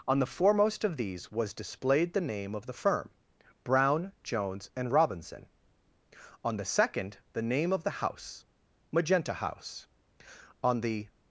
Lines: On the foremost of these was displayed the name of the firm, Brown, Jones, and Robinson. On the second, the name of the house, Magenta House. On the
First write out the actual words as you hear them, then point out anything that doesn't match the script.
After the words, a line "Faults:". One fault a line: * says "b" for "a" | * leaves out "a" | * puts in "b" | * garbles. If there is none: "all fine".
On the foremost of these was displayed the name of the firm, Brown, Jones, and Robinson. On the second, the name of the house, Magenta House. On the
Faults:
all fine